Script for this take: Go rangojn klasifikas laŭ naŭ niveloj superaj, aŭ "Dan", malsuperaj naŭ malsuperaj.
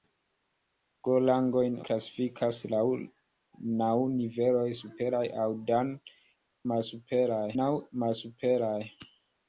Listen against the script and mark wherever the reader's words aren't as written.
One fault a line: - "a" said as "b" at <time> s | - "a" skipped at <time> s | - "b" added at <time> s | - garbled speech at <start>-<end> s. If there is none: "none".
none